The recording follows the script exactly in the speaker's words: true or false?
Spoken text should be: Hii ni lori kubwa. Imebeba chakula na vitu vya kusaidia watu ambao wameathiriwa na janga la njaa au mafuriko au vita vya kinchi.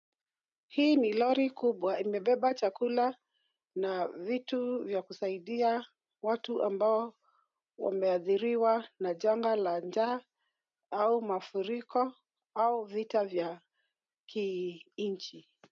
true